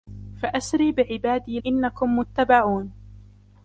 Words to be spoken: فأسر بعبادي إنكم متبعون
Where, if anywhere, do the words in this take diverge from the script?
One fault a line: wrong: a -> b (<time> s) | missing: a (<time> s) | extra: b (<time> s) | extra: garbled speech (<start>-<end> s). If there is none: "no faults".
no faults